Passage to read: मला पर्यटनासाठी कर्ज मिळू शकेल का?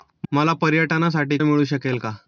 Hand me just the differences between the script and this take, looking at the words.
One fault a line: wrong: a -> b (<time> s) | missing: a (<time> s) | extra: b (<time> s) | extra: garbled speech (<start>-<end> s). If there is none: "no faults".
missing: कर्ज (1.4 s)